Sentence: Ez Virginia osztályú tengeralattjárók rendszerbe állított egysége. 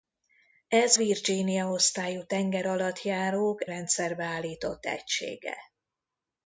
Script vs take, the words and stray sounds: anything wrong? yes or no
no